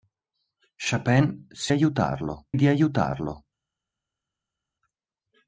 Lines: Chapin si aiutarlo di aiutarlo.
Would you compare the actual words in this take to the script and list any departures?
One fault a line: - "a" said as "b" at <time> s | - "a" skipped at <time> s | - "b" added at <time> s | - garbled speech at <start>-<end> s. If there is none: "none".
none